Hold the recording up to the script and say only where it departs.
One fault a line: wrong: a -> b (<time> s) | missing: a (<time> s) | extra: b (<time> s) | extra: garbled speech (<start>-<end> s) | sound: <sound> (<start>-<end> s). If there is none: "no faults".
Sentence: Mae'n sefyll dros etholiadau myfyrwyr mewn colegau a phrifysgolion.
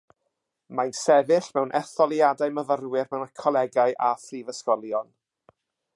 wrong: dros -> mewn (1.6 s)